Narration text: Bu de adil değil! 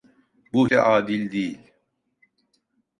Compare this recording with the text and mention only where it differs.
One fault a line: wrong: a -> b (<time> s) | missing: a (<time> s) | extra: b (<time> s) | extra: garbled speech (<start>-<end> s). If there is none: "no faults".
no faults